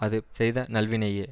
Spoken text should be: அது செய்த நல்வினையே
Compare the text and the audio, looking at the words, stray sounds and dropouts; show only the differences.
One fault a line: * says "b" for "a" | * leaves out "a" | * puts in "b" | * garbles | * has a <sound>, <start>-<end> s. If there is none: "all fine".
all fine